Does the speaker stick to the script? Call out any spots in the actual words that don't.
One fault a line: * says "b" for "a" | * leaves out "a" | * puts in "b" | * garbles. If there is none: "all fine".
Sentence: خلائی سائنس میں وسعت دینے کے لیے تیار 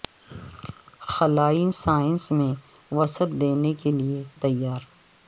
all fine